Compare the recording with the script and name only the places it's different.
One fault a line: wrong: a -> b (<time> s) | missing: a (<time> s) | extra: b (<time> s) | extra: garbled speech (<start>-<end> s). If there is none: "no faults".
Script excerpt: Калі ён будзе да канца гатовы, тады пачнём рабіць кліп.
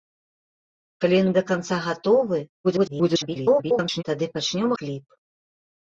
missing: будзе (1.3 s)
extra: garbled speech (2.6-4.0 s)
missing: рабіць (4.7 s)